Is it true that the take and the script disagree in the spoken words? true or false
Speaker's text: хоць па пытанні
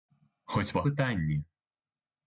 false